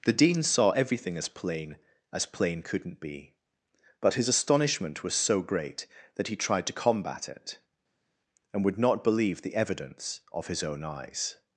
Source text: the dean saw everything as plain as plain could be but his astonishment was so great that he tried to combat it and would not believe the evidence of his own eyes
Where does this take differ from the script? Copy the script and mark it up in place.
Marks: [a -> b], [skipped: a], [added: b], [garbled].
the dean saw everything as plain as plain [could -> couldn't] be but his astonishment was so great that he tried to combat it and would not believe the evidence of his own eyes